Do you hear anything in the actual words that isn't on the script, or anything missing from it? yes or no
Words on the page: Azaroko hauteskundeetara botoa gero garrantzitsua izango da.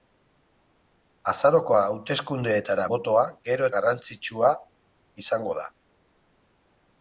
no